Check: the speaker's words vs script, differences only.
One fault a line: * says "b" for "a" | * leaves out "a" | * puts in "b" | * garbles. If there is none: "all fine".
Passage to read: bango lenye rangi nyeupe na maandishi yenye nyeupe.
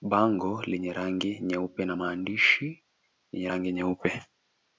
* puts in "rangi"